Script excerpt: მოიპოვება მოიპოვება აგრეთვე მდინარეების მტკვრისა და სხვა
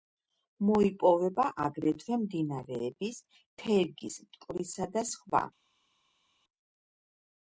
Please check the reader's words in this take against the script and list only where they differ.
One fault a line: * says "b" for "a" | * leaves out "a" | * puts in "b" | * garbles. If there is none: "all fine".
* leaves out "მოიპოვება"
* puts in "თერგის"